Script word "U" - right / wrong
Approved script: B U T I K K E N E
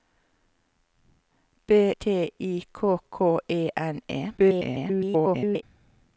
wrong